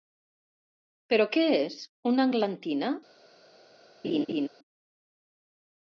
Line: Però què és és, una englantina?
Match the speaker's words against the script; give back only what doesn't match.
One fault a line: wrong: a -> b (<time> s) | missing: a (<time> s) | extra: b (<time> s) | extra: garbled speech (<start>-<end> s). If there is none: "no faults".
missing: és (1.8 s)